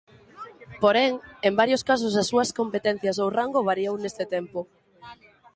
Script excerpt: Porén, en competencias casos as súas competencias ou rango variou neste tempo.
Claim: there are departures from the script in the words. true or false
true